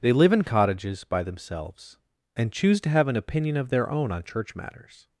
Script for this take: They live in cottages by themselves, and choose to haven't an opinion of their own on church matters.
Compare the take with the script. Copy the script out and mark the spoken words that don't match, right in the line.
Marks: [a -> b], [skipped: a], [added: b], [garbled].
They live in cottages by themselves, and choose to [haven't -> have] an opinion of their own on church matters.